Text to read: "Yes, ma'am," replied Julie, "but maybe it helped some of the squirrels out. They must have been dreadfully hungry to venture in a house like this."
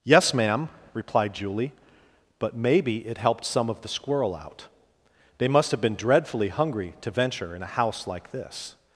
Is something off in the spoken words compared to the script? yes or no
yes